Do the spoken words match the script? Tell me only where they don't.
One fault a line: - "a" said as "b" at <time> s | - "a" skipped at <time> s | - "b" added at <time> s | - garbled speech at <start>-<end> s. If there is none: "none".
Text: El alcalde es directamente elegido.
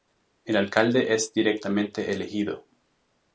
none